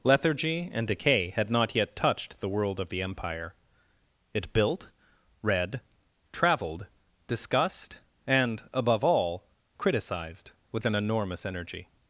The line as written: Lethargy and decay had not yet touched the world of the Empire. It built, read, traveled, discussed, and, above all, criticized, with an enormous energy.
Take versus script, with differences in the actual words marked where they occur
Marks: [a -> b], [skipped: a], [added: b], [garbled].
Lethargy and decay had not yet touched the world of the Empire. It built, read, traveled, discussed, and, above all, criticized, with an enormous energy.